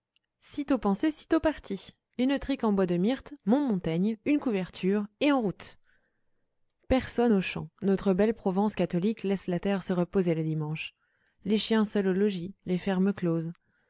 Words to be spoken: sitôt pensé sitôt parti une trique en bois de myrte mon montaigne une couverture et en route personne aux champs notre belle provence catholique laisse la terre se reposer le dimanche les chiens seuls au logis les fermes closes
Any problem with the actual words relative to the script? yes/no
no